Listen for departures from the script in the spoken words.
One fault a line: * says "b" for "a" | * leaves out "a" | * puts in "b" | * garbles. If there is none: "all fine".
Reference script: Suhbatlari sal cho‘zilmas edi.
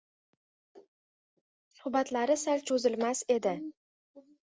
all fine